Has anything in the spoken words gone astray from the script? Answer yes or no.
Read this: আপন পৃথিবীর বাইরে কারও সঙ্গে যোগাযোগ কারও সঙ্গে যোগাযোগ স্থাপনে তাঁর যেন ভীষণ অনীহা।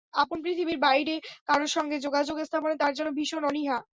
yes